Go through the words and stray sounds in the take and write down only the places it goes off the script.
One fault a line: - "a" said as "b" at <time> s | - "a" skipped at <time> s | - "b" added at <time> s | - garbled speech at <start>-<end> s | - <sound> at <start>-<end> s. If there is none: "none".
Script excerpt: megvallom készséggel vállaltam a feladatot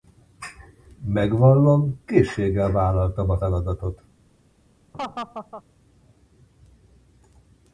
- laugh at 4.9-5.6 s